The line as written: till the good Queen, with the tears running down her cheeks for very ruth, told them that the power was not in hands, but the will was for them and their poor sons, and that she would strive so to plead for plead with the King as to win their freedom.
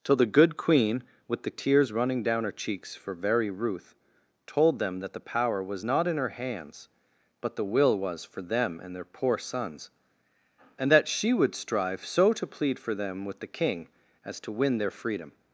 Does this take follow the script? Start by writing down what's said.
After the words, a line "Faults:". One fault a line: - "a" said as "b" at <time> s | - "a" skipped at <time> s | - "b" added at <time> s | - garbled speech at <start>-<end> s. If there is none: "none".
till the good Queen, with the tears running down her cheeks for very ruth, told them that the power was not in her hands, but the will was for them and their poor sons, and that she would strive so to plead for them with the King as to win their freedom.
Faults:
- "her" added at 6.2 s
- "plead" said as "them" at 13.0 s